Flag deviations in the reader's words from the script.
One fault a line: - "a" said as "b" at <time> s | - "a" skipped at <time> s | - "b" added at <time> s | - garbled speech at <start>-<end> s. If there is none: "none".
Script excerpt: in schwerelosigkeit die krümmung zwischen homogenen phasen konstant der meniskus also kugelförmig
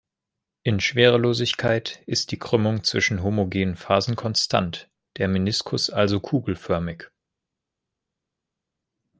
- "ist" added at 2.1 s